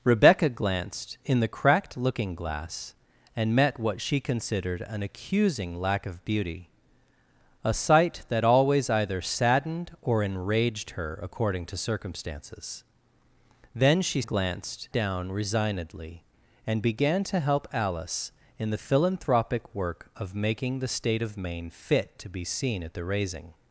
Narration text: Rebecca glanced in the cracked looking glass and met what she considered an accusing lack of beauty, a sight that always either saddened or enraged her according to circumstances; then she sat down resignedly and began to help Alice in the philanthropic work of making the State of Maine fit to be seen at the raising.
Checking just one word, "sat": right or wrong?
wrong